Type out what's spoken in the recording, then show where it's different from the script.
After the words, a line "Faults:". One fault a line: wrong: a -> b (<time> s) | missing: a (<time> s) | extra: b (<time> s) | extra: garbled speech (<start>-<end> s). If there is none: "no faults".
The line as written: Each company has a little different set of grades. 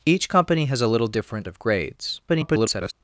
Each company has a little different of grades. [garbled]
Faults:
missing: set (1.5 s)
extra: garbled speech (2.3-2.9 s)